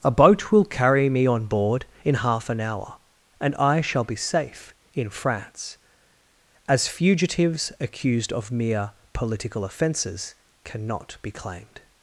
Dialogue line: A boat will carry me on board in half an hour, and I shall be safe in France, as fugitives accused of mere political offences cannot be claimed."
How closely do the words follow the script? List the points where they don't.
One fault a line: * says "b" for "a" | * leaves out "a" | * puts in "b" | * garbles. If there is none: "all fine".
all fine